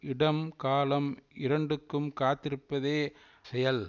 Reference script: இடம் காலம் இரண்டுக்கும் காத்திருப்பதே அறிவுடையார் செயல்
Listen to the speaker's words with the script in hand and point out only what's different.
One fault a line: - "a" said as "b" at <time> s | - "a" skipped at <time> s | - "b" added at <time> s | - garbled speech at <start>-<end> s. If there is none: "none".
- "அறிவுடையார்" skipped at 3.0 s